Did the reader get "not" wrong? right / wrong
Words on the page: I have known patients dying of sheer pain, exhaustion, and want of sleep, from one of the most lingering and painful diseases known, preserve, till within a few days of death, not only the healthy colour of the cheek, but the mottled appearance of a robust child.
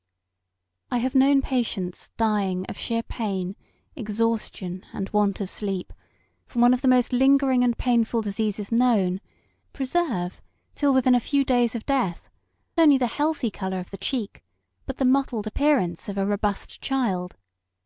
wrong